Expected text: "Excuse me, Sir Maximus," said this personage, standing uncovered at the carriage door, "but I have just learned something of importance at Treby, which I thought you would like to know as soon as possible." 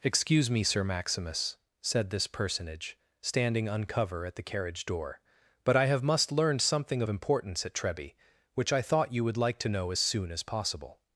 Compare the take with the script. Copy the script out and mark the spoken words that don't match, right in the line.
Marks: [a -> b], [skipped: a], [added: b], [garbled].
"Excuse me, Sir Maximus," said this personage, standing [uncovered -> uncover] at the carriage door, "but I have [just -> must] learned something of importance at Treby, which I thought you would like to know as soon as possible."